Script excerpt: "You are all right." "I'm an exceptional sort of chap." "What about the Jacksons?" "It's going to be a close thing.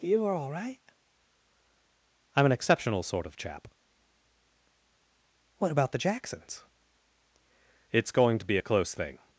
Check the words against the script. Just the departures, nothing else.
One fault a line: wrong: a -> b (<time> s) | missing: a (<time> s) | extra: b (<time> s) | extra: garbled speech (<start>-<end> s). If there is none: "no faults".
no faults